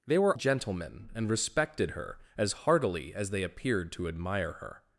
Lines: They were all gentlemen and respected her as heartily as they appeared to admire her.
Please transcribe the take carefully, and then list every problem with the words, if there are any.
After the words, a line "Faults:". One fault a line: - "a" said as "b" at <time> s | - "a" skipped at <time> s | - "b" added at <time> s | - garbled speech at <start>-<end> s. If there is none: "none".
They were gentlemen and respected her as heartily as they appeared to admire her.
Faults:
- "all" skipped at 0.4 s